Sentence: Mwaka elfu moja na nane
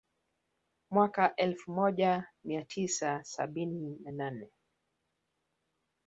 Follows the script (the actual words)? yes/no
no